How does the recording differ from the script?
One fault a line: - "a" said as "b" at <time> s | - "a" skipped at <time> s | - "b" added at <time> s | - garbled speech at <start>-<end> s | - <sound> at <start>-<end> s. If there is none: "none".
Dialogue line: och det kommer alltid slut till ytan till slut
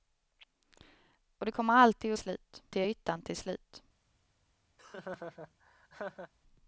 - laugh at 4.8-6.3 s